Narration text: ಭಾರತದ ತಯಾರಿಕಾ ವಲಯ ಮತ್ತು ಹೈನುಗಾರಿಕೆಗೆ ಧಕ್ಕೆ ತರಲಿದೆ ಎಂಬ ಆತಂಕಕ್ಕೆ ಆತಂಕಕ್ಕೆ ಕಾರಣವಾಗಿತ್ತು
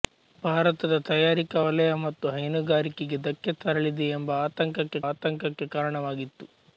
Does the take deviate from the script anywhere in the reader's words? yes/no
no